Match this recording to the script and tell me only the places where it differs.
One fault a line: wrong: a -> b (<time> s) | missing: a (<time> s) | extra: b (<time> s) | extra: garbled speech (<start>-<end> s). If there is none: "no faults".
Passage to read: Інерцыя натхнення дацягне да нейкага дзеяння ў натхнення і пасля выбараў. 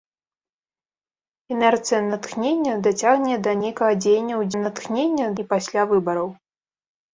no faults